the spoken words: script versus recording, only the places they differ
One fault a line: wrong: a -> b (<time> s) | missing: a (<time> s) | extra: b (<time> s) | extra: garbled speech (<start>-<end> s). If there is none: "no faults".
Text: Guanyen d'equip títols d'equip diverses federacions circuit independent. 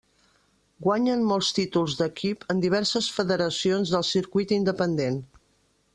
wrong: d'equip -> molts (1.3 s)
extra: en (2.5 s)
extra: del (4.0 s)